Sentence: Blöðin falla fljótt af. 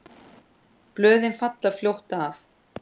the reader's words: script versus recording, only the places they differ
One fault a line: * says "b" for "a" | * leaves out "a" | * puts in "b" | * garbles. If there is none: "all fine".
all fine